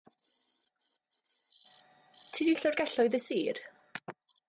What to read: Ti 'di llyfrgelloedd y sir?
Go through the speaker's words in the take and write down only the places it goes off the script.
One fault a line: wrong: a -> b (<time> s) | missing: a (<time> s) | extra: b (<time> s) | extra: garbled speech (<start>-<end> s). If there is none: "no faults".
no faults